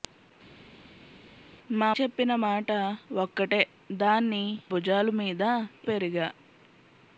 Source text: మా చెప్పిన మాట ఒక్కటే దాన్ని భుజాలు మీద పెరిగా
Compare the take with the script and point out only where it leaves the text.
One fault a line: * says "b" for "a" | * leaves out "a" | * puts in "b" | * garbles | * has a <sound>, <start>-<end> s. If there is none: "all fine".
all fine